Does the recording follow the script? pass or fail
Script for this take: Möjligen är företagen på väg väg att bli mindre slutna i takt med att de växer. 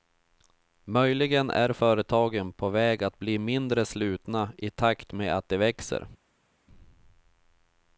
fail